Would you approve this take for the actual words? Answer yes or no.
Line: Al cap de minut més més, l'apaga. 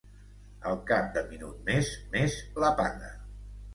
yes